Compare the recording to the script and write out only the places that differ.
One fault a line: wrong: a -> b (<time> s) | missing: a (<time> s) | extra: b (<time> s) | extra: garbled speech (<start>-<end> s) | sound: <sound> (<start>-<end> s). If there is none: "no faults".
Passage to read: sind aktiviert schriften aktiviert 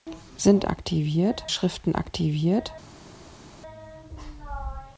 no faults